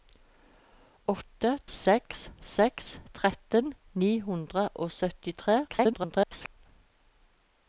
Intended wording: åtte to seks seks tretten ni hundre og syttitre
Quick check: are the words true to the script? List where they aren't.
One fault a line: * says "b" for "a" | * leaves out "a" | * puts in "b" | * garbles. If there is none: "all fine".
* leaves out "to"
* garbles